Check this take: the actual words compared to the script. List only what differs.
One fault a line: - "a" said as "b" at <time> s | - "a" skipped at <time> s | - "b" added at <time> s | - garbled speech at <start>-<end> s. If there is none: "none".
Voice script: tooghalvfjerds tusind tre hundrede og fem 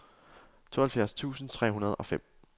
none